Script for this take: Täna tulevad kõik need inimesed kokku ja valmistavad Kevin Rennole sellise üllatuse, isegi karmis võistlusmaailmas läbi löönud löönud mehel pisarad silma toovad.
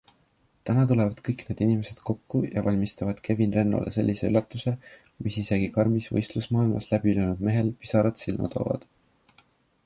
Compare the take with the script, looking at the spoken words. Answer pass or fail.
fail